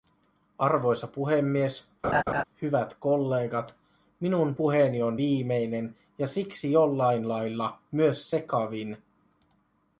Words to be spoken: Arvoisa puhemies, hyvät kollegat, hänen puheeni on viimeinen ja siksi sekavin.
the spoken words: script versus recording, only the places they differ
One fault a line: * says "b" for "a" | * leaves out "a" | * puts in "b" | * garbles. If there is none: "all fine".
* says "minun" for "hänen"
* puts in "jollain lailla myös"